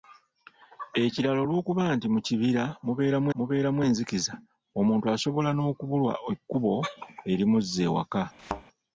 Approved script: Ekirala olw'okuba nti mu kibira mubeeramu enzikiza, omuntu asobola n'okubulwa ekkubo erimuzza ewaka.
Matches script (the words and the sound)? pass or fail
fail